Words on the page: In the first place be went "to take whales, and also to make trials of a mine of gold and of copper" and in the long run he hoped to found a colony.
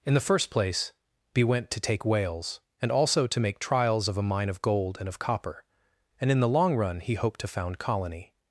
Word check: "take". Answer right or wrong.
right